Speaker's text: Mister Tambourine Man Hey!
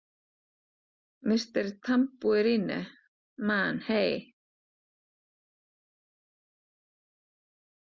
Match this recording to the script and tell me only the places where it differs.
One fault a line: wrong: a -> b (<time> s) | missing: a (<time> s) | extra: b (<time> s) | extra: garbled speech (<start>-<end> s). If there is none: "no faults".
no faults